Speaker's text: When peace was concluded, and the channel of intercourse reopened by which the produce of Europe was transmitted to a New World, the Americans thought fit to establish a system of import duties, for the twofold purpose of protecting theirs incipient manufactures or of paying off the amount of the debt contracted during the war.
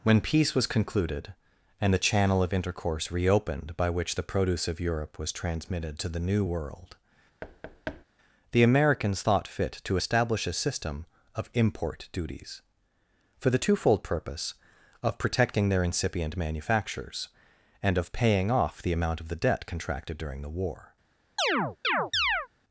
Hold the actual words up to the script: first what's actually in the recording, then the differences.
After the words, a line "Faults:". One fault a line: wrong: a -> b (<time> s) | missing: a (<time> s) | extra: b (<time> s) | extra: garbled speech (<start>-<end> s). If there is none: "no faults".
When peace was concluded, and the channel of intercourse reopened by which the produce of Europe was transmitted to the New World, the Americans thought fit to establish a system of import duties, for the twofold purpose of protecting their incipient manufactures and of paying off the amount of the debt contracted during the war.
Faults:
wrong: a -> the (6.1 s)
wrong: theirs -> their (15.7 s)
wrong: or -> and (17.8 s)